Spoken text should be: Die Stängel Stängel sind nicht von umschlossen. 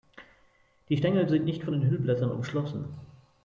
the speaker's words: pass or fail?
fail